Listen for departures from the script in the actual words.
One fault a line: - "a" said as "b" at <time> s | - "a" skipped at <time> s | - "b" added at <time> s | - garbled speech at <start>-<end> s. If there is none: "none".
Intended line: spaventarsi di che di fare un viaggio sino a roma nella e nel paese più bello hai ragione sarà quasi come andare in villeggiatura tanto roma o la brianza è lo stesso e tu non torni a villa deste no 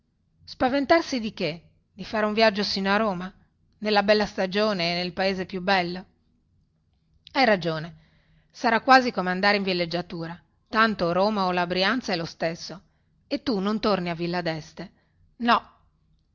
- "bella stagione" added at 4.0 s